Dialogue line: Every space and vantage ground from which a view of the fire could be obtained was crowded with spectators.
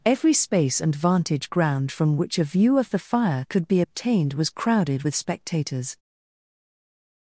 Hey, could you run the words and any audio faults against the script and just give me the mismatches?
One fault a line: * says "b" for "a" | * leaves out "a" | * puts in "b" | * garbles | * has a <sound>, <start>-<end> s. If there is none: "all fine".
all fine